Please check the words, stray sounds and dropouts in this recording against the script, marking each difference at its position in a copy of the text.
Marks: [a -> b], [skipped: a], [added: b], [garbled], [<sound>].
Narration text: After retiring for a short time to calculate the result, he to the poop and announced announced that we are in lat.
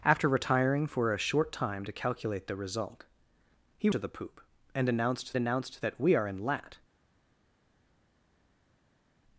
After retiring for a short time to calculate the result, he to the poop and announced announced that we are in lat.